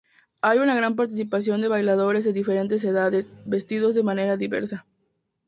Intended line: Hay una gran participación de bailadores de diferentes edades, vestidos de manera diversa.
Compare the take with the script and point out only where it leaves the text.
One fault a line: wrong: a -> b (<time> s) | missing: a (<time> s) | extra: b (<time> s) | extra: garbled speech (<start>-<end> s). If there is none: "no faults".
no faults